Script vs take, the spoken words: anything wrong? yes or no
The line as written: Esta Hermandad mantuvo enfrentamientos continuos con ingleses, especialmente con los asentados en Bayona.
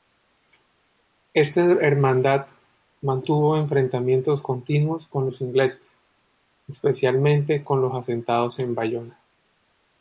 yes